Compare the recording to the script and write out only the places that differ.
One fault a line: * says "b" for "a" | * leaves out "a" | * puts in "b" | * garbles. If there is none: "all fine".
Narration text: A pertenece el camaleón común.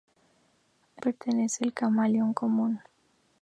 all fine